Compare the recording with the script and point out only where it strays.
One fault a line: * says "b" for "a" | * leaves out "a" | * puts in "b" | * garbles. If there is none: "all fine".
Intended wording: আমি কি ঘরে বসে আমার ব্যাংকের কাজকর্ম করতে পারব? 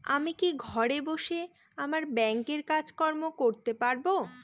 all fine